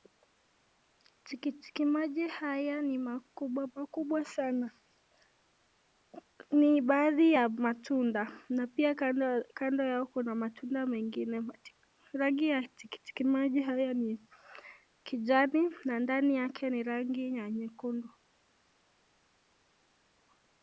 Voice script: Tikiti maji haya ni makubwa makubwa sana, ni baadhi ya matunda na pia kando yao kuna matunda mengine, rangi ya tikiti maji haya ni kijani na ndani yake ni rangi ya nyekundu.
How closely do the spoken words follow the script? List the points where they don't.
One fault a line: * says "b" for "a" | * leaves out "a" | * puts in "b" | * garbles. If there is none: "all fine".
all fine